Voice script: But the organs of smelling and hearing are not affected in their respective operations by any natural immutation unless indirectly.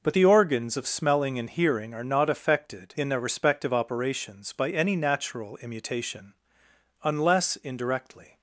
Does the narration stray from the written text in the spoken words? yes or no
no